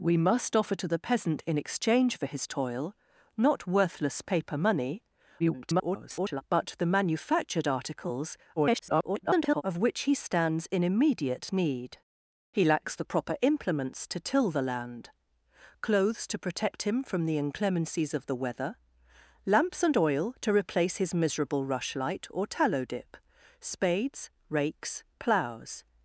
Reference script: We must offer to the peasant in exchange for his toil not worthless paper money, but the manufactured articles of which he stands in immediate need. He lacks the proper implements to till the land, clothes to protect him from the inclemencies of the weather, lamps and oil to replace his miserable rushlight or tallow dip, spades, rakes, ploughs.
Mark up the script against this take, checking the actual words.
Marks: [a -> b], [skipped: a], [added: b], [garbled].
We must offer to the peasant in exchange for his toil not worthless paper money, [garbled] but the manufactured articles [garbled] of which he stands in immediate need. He lacks the proper implements to till the land, clothes to protect him from the inclemencies of the weather, lamps and oil to replace his miserable rushlight or tallow dip, spades, rakes, ploughs.